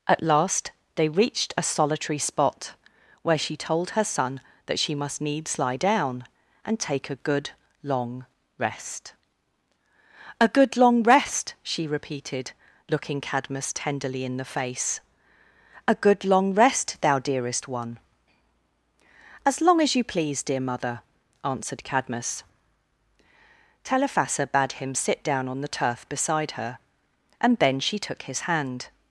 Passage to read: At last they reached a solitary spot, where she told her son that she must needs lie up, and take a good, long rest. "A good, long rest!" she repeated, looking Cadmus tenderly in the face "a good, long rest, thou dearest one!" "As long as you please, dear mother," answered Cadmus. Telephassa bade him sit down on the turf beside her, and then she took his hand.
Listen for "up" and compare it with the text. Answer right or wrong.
wrong